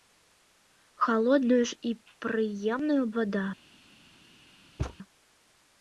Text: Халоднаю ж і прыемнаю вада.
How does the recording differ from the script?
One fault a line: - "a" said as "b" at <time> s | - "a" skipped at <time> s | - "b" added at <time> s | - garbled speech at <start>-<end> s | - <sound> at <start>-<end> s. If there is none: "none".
- thud at 4.8-5.0 s